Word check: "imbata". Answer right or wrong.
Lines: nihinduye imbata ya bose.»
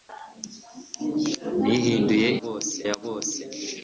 wrong